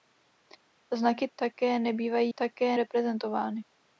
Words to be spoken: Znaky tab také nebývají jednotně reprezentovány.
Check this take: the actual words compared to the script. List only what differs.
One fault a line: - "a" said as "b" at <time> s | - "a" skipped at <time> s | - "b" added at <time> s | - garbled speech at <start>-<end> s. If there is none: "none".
- "tab" skipped at 1.3 s
- "jednotně" said as "také" at 2.4 s